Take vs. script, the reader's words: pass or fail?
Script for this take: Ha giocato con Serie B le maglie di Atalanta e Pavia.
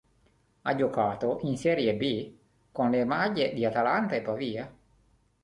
fail